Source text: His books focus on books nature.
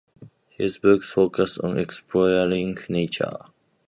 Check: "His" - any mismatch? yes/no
no